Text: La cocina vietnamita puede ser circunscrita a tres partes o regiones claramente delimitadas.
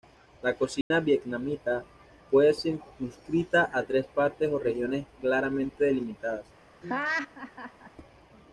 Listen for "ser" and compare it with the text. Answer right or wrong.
wrong